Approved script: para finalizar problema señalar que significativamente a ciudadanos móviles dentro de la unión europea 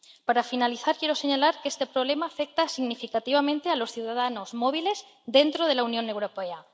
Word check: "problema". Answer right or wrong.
wrong